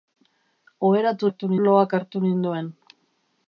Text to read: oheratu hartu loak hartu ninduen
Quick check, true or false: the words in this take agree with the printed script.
true